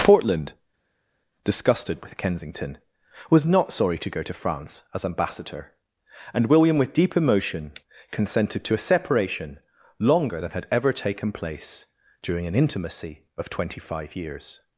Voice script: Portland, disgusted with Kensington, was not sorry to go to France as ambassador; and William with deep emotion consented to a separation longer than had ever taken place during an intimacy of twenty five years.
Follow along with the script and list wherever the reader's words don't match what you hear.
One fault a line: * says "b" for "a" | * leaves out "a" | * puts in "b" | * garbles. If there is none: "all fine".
all fine